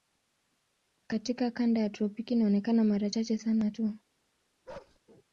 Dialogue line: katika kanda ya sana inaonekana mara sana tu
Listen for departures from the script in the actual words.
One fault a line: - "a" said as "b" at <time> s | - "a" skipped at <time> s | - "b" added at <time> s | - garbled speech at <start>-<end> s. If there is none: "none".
- "sana" said as "tropiki" at 1.9 s
- "chache" added at 3.1 s